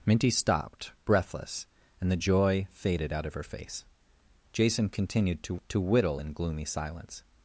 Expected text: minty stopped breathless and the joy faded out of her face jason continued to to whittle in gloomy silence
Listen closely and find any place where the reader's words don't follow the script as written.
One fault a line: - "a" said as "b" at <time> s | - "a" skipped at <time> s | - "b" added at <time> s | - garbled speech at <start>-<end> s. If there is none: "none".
none